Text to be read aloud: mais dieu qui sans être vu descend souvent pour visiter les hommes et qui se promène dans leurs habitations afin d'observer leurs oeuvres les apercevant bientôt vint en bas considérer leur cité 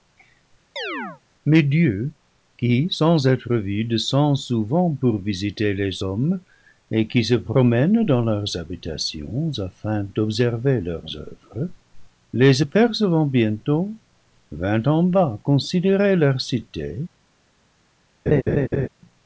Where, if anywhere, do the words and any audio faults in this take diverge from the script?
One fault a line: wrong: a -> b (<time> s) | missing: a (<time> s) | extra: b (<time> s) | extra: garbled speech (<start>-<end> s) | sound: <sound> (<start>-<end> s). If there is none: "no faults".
sound: chirp (0.8-1.2 s)
sound: laugh (18.3-18.9 s)